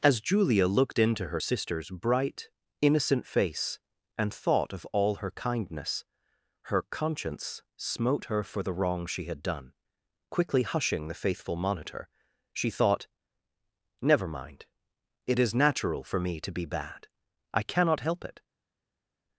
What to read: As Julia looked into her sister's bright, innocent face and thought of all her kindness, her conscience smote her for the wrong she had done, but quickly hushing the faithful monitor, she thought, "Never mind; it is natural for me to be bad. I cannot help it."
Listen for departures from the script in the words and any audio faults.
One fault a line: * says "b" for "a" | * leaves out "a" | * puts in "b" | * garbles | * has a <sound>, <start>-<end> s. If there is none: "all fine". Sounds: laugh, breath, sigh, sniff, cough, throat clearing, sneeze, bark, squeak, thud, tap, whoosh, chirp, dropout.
* leaves out "but"